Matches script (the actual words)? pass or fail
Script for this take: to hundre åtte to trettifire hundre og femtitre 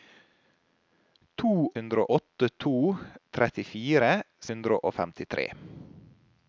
pass